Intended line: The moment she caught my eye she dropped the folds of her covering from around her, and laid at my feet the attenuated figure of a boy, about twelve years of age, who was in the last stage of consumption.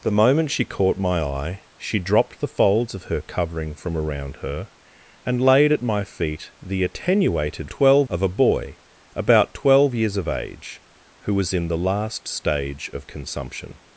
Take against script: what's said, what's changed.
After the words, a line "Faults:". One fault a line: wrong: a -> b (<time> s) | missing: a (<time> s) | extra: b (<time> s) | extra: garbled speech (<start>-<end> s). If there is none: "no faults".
The moment she caught my eye she dropped the folds of her covering from around her, and laid at my feet the attenuated twelve of a boy, about twelve years of age, who was in the last stage of consumption.
Faults:
wrong: figure -> twelve (7.7 s)